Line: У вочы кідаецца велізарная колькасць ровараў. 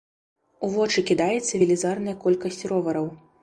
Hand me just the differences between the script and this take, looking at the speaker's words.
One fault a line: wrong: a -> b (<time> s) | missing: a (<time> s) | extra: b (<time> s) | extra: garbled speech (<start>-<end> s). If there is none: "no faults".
no faults